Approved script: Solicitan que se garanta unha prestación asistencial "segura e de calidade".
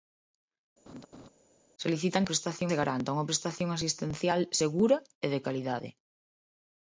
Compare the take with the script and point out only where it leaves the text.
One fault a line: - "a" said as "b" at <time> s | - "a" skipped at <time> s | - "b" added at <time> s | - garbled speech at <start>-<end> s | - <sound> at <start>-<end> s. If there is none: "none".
- laugh at 0.9-1.3 s
- "que" said as "prestación" at 2.3 s